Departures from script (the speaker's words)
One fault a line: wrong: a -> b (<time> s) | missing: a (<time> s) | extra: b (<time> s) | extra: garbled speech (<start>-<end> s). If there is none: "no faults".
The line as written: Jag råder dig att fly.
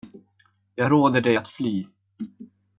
no faults